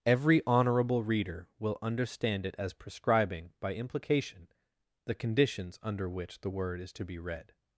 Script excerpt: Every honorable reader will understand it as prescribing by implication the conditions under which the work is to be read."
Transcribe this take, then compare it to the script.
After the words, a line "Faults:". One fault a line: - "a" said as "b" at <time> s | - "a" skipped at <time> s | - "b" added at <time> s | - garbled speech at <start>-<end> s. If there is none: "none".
Every honorable reader will understand it as prescribing by implication the conditions under which the word is to be read."
Faults:
- "work" said as "word" at 6.5 s